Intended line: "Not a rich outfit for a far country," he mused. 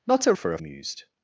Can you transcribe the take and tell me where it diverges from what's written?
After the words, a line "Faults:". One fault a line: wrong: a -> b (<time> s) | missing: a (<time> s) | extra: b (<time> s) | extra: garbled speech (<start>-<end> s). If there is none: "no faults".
"Not a for a mused.
Faults:
missing: rich outfit (0.3 s)
missing: far country he (0.6 s)